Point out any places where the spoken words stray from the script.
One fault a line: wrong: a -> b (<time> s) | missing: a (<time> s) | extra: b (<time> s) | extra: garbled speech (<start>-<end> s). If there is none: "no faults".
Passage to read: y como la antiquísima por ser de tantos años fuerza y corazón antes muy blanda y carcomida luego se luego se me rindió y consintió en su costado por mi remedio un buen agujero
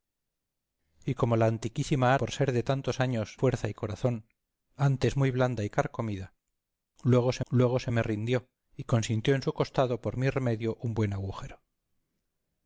no faults